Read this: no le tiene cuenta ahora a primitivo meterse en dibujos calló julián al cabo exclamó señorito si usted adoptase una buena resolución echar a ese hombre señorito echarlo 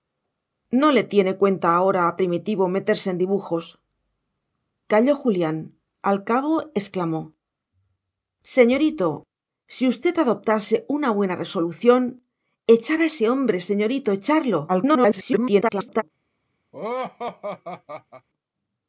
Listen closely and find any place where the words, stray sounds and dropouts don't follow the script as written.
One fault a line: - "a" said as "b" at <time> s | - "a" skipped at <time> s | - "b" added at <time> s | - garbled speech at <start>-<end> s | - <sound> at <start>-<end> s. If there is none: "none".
- garbled speech at 14.7-16.0 s
- laugh at 16.7-18.3 s